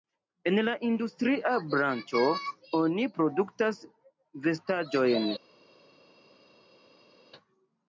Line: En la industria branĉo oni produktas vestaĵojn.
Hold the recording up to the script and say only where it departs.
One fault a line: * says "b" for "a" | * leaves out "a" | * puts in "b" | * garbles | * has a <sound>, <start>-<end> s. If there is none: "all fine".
all fine